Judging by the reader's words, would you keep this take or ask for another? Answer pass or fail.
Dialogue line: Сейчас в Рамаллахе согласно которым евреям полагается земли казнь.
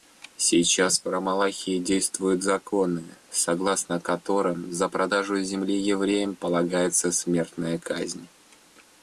fail